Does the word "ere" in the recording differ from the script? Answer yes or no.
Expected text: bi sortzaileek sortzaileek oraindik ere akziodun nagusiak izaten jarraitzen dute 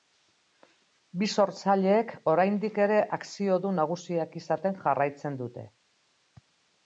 no